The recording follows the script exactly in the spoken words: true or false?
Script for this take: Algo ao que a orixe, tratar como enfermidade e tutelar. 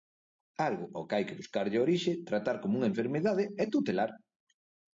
false